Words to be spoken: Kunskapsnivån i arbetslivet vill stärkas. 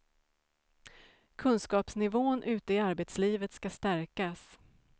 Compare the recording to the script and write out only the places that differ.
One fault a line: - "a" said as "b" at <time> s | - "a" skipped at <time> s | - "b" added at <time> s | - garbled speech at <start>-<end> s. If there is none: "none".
- "ute" added at 2.4 s
- "vill" said as "ska" at 3.5 s